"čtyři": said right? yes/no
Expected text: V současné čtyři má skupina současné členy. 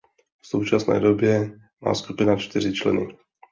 no